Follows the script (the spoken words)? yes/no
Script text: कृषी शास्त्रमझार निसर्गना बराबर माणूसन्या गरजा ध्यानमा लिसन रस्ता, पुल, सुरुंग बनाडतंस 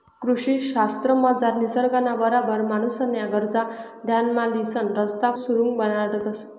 no